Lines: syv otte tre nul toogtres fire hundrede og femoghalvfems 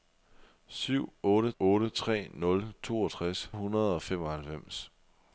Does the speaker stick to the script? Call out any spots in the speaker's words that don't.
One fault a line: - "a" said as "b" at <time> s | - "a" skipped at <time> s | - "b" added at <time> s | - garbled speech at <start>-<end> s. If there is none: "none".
- "otte" added at 1.6 s
- "fire" skipped at 3.5 s